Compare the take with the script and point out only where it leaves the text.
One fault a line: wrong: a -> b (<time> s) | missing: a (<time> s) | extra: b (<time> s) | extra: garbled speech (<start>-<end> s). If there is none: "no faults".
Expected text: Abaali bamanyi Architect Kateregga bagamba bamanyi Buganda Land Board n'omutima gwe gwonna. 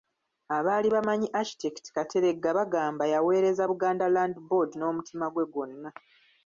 wrong: bamanyi -> yaweereza (3.1 s)